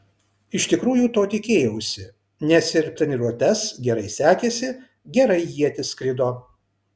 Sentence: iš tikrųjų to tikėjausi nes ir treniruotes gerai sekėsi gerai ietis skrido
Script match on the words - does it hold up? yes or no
yes